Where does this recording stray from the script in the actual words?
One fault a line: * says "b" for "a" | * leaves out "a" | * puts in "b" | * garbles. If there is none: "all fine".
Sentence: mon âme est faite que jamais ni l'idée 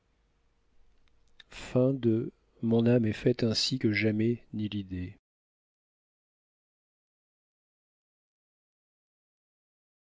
* puts in "ainsi"